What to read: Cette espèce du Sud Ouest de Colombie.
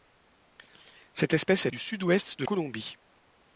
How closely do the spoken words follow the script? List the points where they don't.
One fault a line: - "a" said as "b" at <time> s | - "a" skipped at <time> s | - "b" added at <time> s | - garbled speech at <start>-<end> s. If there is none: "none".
none